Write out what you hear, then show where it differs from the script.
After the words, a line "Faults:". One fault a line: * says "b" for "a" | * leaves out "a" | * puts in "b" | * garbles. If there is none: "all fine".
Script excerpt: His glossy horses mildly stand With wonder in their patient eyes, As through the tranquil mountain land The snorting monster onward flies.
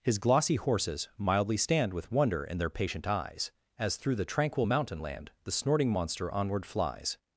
His glossy horses mildly stand With wonder in their patient eyes, As through the tranquil mountain land The snorting monster onward flies.
Faults:
all fine